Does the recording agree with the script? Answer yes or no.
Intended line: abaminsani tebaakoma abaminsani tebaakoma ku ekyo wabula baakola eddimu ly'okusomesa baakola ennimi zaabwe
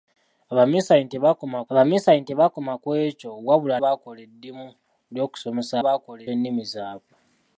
yes